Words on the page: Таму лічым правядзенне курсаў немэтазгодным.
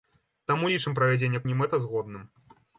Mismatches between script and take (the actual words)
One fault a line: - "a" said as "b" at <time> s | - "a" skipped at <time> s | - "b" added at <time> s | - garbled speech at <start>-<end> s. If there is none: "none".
- "курсаў" skipped at 1.4 s